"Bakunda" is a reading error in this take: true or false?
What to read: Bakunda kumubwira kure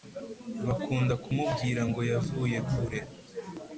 false